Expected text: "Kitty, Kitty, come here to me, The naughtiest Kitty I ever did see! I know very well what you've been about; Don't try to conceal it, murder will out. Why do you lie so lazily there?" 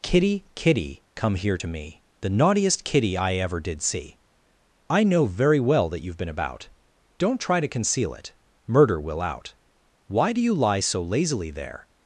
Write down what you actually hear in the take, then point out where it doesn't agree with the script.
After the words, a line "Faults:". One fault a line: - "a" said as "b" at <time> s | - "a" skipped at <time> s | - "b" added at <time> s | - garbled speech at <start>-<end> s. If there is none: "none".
"Kitty, Kitty, come here to me, The naughtiest Kitty I ever did see! I know very well that you've been about; Don't try to conceal it, murder will out. Why do you lie so lazily there?"
Faults:
- "what" said as "that" at 5.9 s